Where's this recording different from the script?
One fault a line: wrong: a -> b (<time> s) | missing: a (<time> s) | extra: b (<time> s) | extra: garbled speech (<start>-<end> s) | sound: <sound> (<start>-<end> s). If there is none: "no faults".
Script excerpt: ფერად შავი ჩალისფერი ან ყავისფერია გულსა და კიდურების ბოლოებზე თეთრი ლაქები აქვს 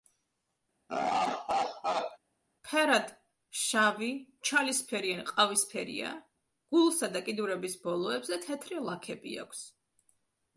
sound: laugh (0.9-2.2 s)